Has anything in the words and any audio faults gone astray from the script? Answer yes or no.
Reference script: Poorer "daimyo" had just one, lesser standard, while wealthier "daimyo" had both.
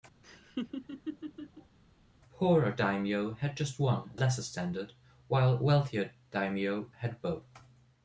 yes